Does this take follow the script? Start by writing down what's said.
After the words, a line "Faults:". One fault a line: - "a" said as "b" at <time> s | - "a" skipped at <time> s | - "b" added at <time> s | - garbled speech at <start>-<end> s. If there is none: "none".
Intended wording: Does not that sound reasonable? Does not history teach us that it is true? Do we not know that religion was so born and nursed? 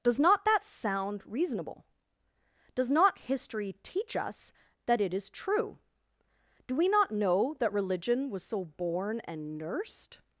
Does not that sound reasonable? Does not history teach us that it is true? Do we not know that religion was so born and nursed?
Faults:
none